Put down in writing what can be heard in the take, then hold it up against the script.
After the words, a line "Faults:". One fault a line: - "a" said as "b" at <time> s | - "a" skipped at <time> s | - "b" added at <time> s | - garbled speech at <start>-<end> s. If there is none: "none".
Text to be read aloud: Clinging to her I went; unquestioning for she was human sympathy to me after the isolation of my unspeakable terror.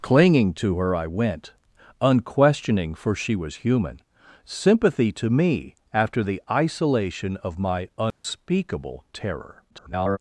Clinging to her I went; unquestioning for she was human sympathy to me after the isolation of my unspeakable terror. [garbled]
Faults:
- garbled speech at 9.7-10.2 s